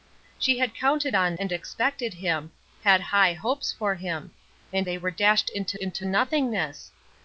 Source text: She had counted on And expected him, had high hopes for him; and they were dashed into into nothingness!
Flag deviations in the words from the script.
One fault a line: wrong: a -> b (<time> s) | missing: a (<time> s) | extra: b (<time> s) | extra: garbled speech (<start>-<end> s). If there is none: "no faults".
no faults